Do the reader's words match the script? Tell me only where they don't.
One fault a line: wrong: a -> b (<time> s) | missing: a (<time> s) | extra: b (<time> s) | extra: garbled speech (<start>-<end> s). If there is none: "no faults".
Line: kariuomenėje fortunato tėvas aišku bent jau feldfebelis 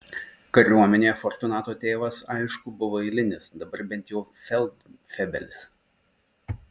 extra: buvo eilinis dabar (2.8 s)